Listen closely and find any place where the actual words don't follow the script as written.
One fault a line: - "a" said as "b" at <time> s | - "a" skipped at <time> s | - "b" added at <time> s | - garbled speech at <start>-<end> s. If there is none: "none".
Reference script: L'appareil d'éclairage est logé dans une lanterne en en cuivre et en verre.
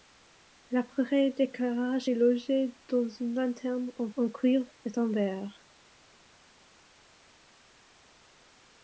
none